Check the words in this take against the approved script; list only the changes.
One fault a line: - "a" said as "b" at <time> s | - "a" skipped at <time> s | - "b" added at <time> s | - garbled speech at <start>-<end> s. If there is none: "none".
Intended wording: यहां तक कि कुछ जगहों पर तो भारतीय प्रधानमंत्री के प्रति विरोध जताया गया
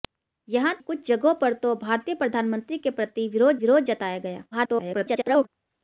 - "तक कि" skipped at 0.7 s
- "विरोध" added at 3.6 s
- garbled speech at 4.5-5.5 s